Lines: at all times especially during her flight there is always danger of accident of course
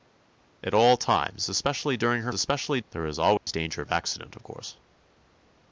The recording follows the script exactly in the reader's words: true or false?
false